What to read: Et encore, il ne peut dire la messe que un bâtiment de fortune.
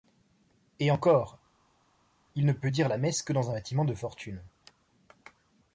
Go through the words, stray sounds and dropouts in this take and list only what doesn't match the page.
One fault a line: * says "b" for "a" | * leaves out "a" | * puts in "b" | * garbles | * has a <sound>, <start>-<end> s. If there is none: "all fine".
* puts in "dans"